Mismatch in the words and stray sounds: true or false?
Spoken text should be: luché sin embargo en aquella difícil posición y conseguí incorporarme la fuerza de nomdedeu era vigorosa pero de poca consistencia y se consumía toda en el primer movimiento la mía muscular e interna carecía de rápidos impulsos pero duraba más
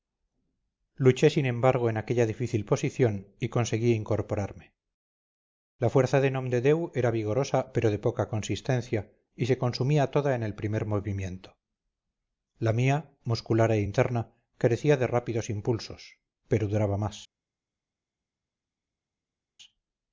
false